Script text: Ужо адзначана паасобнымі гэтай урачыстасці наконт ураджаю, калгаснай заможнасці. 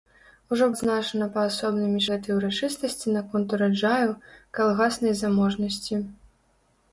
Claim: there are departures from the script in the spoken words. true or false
false